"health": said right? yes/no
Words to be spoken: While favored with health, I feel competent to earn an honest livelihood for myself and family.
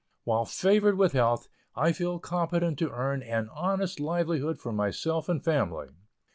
yes